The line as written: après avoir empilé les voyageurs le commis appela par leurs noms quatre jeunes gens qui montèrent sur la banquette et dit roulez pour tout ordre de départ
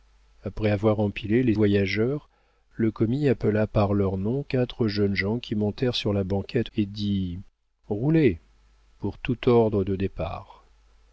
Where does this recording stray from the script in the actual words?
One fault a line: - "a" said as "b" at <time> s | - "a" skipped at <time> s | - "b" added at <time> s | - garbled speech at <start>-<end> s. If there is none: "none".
none